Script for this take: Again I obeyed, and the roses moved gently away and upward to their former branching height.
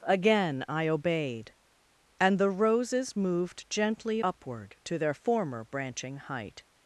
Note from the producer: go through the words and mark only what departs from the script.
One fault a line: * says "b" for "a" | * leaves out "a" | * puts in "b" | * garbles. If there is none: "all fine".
* leaves out "away and"